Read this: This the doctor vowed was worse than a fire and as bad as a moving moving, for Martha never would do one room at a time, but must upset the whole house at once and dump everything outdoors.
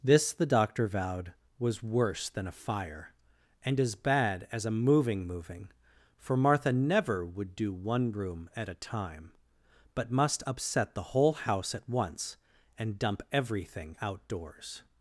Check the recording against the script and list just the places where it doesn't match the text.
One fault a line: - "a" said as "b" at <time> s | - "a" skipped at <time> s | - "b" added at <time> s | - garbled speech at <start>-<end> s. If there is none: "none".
none